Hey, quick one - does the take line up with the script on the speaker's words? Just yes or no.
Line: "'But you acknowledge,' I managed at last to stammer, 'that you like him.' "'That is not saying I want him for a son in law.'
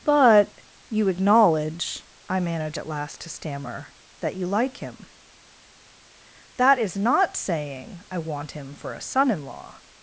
no